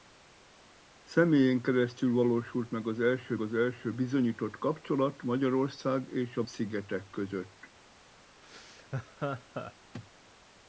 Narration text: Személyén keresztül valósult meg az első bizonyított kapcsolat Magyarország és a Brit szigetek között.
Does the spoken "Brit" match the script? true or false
false